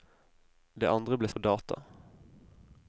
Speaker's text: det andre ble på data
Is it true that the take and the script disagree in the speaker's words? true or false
false